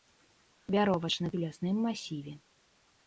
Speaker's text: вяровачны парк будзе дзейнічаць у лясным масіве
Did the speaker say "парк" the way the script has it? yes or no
no